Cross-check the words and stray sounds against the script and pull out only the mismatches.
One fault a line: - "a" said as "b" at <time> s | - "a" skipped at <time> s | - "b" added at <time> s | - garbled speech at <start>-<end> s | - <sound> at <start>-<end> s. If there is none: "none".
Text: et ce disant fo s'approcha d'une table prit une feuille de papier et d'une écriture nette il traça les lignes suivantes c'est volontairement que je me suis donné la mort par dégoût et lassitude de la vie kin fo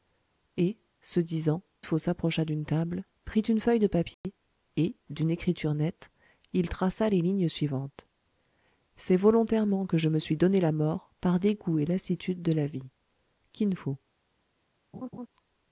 - dropout at 4.1-4.2 s
- laugh at 14.9-15.3 s